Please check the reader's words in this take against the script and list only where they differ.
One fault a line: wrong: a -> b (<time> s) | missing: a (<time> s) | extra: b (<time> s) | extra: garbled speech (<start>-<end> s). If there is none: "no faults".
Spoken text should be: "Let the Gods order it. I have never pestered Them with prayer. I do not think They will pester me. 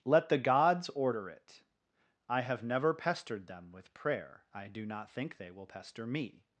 no faults